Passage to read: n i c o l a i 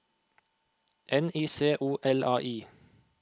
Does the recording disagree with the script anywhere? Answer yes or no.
no